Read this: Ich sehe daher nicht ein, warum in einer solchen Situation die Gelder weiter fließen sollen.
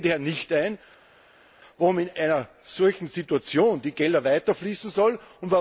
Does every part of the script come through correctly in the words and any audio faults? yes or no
yes